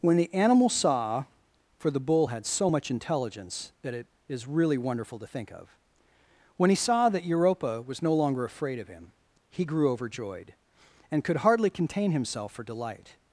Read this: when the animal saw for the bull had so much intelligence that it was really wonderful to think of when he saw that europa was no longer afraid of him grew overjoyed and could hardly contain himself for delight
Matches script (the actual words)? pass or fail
fail